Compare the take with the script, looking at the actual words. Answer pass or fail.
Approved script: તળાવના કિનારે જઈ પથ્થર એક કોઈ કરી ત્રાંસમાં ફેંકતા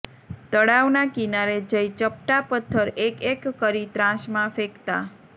fail